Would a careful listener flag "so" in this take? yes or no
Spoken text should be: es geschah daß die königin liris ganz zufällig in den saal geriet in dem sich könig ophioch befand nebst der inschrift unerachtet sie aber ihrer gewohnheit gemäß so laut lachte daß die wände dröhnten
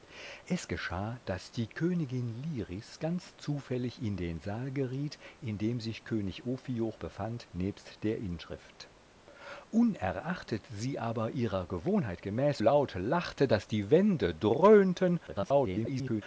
yes